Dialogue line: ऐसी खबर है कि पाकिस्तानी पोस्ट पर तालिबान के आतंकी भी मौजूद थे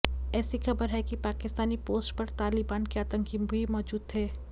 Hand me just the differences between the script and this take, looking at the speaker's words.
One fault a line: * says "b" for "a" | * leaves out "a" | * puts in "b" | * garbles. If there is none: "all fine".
all fine